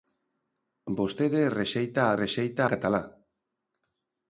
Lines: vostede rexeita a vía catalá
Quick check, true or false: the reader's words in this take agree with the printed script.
false